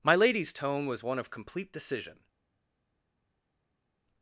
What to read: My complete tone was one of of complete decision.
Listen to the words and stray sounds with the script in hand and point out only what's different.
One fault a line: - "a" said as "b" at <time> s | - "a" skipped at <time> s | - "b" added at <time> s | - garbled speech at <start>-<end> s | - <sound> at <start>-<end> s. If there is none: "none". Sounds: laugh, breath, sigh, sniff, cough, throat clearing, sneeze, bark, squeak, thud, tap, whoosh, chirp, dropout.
- "complete" said as "lady's" at 0.1 s
- "of" skipped at 1.3 s